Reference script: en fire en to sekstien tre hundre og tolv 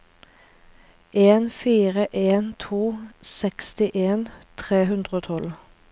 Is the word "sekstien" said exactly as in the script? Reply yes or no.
yes